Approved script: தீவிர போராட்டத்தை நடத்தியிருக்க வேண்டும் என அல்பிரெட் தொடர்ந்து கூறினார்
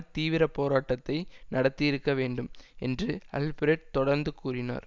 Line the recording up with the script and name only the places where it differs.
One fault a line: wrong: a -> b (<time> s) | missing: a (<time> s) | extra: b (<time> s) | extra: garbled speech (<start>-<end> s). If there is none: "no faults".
wrong: என -> என்று (2.8 s)